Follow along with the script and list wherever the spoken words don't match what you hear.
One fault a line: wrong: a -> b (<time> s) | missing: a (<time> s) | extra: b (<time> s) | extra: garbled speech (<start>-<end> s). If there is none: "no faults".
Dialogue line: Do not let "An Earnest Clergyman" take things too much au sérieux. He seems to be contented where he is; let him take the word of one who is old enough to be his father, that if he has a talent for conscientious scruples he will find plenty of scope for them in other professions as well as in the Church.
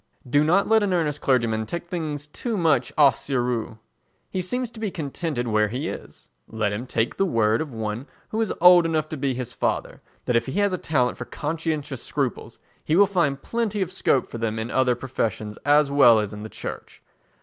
no faults